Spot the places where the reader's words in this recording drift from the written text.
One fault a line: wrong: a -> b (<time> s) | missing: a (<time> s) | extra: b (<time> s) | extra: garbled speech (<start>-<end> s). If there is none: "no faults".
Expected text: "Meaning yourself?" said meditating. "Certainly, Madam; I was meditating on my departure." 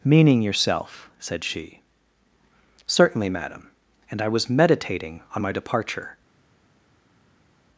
wrong: meditating -> she (1.4 s)
extra: and (4.1 s)